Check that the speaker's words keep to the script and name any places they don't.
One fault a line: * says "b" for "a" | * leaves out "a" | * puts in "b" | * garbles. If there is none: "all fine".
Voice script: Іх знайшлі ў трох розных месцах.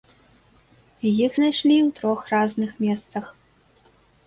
all fine